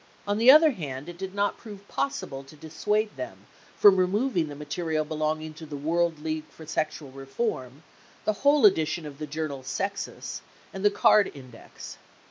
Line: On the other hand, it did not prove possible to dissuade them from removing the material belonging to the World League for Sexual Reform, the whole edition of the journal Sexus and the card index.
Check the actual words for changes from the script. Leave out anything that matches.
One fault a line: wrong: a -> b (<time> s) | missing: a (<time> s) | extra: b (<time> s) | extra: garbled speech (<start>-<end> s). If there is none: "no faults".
no faults